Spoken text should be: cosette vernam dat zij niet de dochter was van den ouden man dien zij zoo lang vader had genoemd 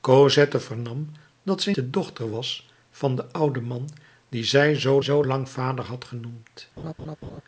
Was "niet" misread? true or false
true